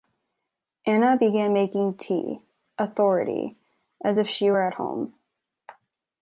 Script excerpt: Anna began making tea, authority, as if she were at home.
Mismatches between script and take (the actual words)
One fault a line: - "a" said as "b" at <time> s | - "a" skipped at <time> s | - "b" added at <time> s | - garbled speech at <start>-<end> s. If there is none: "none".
none